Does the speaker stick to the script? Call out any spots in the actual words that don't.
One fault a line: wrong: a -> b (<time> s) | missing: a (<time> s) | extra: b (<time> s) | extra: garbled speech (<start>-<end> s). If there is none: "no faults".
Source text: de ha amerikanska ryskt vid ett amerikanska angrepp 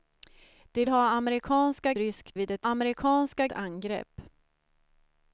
no faults